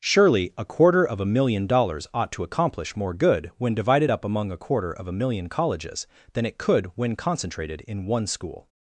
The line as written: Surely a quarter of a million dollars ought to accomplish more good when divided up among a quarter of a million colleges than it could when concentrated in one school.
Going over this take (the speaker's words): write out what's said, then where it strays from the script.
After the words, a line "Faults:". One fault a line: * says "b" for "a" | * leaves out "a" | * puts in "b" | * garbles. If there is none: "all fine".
Surely a quarter of a million dollars ought to accomplish more good when divided up among a quarter of a million colleges than it could when concentrated in one school.
Faults:
all fine